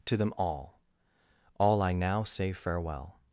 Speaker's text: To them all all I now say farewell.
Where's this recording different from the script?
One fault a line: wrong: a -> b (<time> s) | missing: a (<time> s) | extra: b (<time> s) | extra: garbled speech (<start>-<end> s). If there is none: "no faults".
no faults